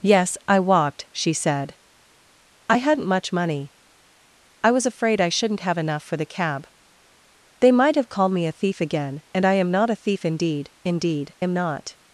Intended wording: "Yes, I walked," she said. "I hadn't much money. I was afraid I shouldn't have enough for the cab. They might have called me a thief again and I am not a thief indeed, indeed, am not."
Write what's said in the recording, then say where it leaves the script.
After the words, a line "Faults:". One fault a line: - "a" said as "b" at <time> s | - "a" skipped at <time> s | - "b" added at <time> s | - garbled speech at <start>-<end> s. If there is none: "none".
"Yes, I walked," she said. "I hadn't much money. I was afraid I shouldn't have enough for the cab. They might have called me a thief again and I am not a thief indeed, indeed, am not."
Faults:
none